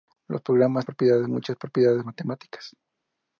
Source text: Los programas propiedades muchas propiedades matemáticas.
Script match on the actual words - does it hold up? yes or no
yes